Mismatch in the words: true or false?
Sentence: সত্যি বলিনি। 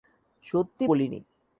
false